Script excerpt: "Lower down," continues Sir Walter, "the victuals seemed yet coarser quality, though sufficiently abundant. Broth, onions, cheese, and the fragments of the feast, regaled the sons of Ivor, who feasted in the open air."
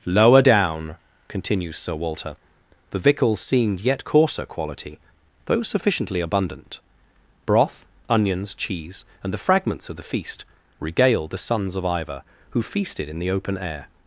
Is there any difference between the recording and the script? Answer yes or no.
no